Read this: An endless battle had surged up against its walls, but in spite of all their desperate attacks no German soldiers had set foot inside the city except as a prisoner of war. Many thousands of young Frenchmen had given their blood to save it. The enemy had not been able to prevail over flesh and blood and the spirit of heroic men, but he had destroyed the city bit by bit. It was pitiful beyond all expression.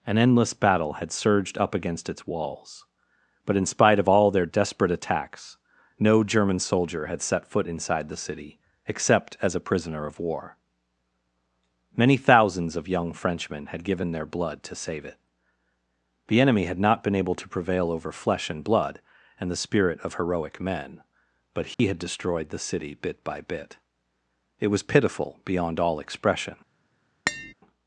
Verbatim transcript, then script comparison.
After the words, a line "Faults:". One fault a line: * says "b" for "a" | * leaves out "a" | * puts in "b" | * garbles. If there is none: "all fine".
An endless battle had surged up against its walls, but in spite of all their desperate attacks no German soldier had set foot inside the city except as a prisoner of war. Many thousands of young Frenchmen had given their blood to save it. The enemy had not been able to prevail over flesh and blood and the spirit of heroic men, but he had destroyed the city bit by bit. It was pitiful beyond all expression.
Faults:
* says "soldier" for "soldiers"